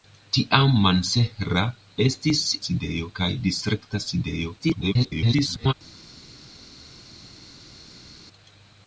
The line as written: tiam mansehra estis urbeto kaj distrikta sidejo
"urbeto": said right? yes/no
no